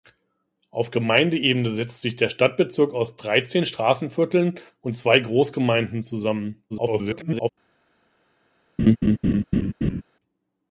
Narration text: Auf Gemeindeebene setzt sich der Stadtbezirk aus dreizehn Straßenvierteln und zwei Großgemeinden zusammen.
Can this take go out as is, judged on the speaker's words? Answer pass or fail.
fail